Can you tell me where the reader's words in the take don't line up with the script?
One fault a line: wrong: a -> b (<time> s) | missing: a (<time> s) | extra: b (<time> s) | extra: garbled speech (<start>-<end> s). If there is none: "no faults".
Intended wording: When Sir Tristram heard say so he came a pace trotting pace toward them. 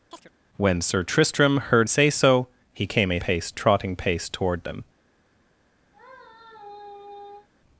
no faults